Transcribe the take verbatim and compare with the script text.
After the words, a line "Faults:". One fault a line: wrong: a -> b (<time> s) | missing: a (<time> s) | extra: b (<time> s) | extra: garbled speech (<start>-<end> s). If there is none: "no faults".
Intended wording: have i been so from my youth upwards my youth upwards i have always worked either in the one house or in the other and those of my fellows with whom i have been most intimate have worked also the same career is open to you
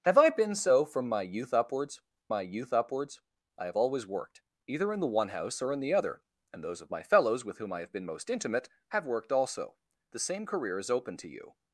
have i been so from my youth upwards my youth upwards i have always worked either in the one house or in the other and those of my fellows with whom i have been most intimate have worked also the same career is open to you
Faults:
no faults